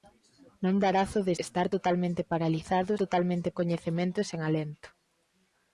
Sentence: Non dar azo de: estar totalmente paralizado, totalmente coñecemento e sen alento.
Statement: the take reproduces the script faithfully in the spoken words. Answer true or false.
true